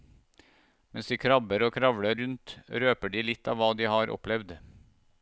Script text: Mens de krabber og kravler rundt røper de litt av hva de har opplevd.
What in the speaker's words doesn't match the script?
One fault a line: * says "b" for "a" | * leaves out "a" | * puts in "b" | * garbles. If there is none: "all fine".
all fine